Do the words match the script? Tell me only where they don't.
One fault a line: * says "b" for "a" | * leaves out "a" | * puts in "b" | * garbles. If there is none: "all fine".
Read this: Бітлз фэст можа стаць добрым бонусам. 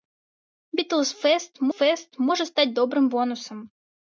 * puts in "фэст"